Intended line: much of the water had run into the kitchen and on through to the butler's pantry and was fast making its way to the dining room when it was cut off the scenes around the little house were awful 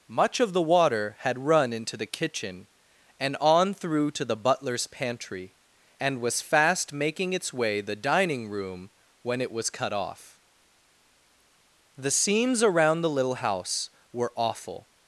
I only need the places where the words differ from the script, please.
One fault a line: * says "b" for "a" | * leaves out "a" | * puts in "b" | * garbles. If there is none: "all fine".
* leaves out "to"